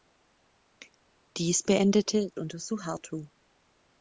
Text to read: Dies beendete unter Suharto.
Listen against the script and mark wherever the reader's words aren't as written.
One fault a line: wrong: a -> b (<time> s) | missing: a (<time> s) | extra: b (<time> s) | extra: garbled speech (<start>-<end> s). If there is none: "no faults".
no faults